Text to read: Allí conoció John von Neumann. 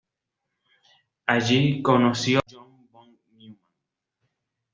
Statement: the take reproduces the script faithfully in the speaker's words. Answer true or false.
true